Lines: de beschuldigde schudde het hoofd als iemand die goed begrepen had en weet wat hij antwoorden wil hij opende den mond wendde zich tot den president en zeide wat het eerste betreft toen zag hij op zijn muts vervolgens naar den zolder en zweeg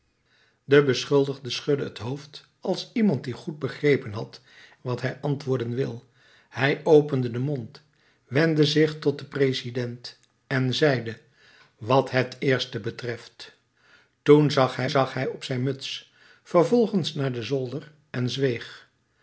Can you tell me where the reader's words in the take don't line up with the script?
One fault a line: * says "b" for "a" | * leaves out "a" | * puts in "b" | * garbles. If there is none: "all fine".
* leaves out "en weet"
* puts in "zag hij"